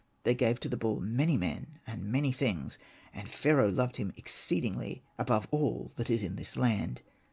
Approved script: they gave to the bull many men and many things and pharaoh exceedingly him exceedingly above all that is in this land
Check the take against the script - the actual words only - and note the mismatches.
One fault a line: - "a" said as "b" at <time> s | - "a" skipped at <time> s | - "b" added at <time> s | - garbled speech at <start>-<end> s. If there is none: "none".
- "exceedingly" said as "loved" at 3.7 s